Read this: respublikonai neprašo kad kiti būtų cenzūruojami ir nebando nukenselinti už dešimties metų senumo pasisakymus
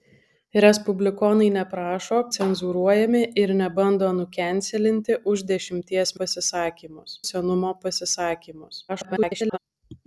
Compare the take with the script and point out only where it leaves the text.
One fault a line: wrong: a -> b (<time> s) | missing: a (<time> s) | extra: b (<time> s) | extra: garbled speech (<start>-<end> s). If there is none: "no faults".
missing: kad kiti būtų (2.2 s)
wrong: metų -> pasisakymus (6.2 s)
extra: garbled speech (8.9-9.6 s)